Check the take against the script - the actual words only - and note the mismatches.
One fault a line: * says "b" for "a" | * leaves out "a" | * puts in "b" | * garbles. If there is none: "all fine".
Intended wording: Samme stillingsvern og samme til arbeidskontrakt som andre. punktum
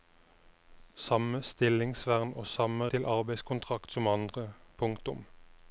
all fine